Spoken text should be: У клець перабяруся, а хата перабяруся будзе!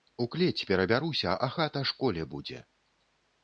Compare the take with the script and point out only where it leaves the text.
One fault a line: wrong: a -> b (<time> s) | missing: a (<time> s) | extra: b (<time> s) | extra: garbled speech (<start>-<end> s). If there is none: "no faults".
wrong: перабяруся -> школе (1.9 s)